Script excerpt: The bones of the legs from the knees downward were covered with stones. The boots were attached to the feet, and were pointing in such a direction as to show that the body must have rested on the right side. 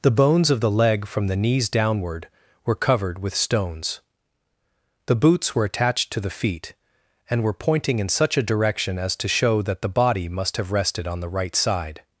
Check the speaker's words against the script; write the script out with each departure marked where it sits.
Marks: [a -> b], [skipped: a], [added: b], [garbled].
The bones of the [legs -> leg] from the knees downward were covered with stones. The boots were attached to the feet, and were pointing in such a direction as to show that the body must have rested on the right side.